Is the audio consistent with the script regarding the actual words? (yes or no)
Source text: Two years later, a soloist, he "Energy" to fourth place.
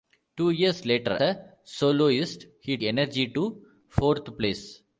yes